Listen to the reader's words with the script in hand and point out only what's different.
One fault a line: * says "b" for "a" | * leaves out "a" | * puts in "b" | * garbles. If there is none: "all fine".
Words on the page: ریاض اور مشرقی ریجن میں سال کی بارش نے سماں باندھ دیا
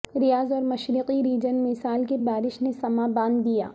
all fine